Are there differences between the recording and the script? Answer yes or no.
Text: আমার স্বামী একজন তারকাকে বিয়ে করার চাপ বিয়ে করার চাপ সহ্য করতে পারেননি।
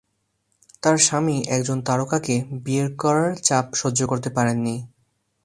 yes